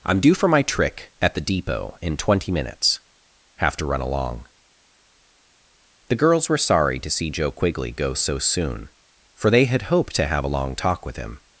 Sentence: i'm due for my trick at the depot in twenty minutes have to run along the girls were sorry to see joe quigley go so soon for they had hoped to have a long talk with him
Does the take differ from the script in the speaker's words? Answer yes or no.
no